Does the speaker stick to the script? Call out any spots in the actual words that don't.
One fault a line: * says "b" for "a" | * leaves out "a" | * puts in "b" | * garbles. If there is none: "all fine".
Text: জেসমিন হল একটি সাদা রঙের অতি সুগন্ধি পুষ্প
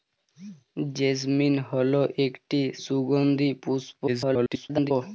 * leaves out "সাদা রঙের অতি"
* garbles